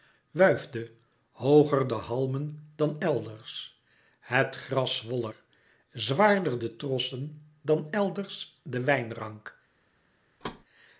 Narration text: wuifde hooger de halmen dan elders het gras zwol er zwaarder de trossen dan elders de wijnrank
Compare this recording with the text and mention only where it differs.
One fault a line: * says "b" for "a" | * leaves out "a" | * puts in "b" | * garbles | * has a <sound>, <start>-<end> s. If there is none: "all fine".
* has a thud, 10.4-10.6 s